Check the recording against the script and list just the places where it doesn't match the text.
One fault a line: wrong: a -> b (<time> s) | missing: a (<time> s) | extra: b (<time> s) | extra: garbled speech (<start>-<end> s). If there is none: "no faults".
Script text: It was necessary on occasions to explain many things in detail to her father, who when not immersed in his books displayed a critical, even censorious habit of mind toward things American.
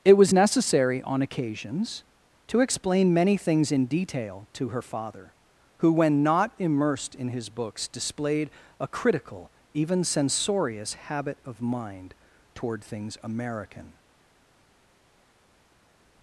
no faults